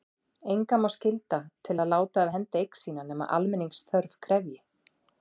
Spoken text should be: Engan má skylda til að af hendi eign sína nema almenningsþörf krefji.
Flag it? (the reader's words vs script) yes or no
yes